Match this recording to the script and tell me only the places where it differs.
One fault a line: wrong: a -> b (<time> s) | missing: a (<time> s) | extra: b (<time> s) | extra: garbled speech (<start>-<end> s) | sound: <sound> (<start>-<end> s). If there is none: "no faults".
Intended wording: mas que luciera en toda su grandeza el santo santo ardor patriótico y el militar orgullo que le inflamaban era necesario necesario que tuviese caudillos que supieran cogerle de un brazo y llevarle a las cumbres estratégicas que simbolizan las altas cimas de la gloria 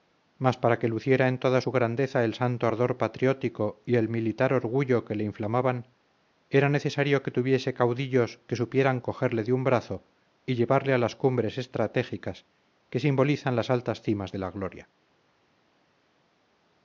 extra: para (0.6 s)
missing: santo (2.7 s)
missing: necesario (7.2 s)